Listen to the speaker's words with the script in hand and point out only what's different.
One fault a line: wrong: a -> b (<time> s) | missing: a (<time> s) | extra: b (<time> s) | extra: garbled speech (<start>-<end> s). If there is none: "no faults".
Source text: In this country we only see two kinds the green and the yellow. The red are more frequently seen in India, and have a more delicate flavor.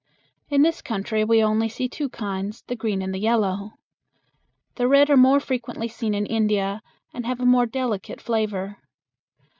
no faults